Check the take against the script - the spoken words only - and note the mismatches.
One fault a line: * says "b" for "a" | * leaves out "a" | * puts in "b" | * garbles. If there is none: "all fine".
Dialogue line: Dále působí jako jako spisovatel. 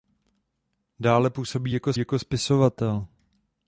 all fine